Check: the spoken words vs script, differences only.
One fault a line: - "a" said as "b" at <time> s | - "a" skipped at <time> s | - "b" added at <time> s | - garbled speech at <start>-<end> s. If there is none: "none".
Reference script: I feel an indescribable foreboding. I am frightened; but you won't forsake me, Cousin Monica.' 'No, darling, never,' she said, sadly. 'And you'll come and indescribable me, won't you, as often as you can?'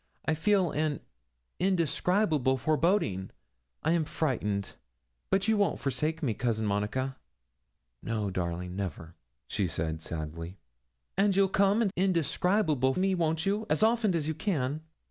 none